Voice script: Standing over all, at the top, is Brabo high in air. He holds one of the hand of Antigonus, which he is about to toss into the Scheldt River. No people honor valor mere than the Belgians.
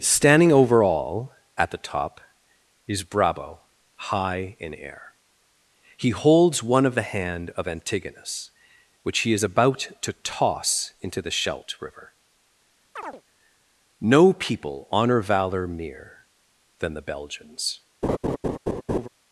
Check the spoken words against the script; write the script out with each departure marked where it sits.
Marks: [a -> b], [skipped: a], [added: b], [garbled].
Standing over all, at the top, is Brabo high in air. He holds one of the hand of Antigonus, which he is about to toss into the Scheldt River. No people honor valor mere than the Belgians.